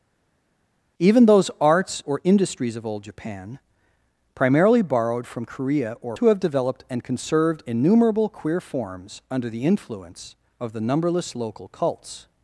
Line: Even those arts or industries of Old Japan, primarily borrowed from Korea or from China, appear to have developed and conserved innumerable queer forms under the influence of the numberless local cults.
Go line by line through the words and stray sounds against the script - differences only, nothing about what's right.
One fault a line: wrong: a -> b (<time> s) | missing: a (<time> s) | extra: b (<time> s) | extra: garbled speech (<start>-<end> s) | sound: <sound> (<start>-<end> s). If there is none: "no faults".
missing: from China appear (6.2 s)